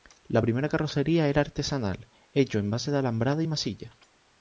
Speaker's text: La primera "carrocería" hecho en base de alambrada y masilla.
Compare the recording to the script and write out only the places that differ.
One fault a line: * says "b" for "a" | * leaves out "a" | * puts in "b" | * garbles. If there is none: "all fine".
* puts in "era artesanal"